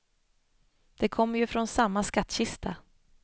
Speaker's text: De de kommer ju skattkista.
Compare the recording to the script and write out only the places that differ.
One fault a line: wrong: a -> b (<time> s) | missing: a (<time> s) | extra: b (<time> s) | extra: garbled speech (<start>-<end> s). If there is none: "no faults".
missing: de (1.1 s)
extra: från samma (1.5 s)